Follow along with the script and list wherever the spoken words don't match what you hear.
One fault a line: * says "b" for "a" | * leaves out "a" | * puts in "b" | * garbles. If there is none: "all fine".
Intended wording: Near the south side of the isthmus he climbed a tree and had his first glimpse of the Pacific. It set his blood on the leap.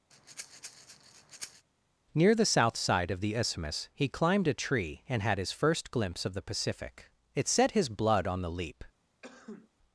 all fine